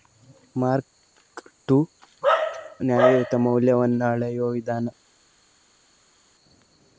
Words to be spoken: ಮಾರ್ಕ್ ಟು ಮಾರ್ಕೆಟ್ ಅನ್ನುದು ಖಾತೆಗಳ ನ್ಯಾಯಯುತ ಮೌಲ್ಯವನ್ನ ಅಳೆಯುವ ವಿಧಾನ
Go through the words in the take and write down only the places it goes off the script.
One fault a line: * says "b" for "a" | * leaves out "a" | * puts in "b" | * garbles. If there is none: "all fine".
* leaves out "ಮಾರ್ಕೆಟ್ ಅನ್ನುದು ಖಾತೆಗಳ"